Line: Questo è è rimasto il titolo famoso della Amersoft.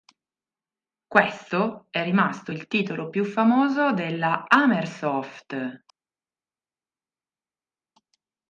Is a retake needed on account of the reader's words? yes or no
yes